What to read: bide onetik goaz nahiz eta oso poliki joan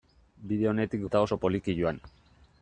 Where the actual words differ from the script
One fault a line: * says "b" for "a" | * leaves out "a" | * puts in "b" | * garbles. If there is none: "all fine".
* leaves out "goaz nahiz"